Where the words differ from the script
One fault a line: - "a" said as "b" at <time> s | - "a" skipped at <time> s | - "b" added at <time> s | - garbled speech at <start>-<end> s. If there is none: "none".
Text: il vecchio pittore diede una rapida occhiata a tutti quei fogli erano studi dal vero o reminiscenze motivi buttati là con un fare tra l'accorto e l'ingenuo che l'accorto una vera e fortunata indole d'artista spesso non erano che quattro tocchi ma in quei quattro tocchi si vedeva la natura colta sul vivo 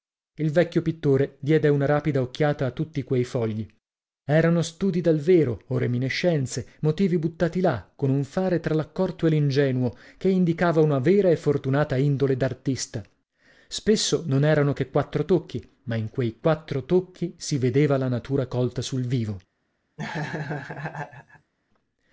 - "l'accorto" said as "indicava" at 10.3 s